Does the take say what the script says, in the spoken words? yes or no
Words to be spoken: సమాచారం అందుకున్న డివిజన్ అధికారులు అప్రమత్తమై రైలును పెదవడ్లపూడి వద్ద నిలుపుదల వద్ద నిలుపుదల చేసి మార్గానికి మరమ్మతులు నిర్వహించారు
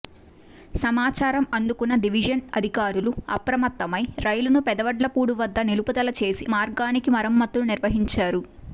no